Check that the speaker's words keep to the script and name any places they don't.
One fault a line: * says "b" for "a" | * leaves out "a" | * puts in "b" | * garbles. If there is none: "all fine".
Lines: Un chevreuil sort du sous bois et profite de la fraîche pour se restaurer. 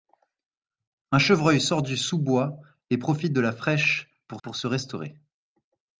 * puts in "pour"